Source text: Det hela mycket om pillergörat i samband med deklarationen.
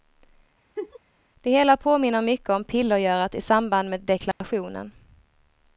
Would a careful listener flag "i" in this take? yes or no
no